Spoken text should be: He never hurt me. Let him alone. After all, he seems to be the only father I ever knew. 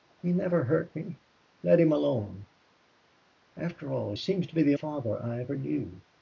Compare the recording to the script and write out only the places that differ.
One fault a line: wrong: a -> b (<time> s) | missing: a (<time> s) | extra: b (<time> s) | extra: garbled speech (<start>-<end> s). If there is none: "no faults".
missing: he (4.1 s)
missing: only (4.7 s)